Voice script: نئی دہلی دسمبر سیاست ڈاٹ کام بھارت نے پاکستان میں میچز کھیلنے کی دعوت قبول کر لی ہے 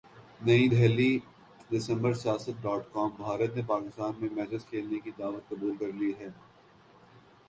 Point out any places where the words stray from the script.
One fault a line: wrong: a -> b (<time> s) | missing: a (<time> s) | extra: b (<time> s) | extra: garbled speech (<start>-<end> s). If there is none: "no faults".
no faults